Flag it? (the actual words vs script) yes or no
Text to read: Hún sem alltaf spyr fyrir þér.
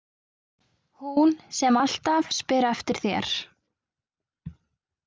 yes